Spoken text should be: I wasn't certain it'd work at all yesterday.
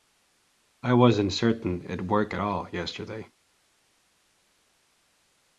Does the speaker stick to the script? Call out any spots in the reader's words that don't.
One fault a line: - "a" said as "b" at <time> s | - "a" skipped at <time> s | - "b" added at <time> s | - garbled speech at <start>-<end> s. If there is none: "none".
none